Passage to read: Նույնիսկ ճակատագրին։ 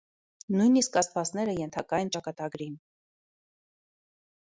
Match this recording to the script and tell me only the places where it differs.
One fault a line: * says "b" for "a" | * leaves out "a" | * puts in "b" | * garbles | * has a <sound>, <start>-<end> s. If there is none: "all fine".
* puts in "աստվածները ենթակա են"